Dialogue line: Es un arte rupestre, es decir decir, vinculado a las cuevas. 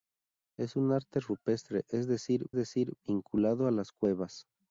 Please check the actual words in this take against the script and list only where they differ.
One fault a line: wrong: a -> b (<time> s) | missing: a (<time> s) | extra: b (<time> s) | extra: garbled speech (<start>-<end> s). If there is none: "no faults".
no faults